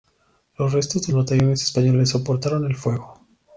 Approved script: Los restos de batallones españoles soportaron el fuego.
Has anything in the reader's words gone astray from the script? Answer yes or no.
no